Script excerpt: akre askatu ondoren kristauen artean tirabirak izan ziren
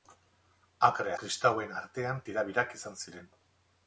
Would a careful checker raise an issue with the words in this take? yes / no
yes